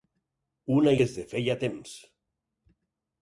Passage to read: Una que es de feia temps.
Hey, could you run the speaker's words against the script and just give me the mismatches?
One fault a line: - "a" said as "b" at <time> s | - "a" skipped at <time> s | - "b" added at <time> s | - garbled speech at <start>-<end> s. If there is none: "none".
none